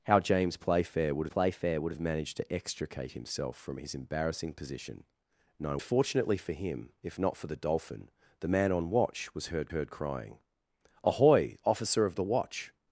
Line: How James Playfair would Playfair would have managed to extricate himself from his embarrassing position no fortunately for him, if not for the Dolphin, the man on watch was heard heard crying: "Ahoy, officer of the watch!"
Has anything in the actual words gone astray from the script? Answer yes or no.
no